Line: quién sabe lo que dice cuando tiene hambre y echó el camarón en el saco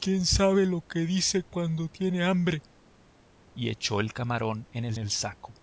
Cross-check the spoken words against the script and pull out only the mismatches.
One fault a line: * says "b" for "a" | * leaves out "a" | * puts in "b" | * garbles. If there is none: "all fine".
* puts in "el"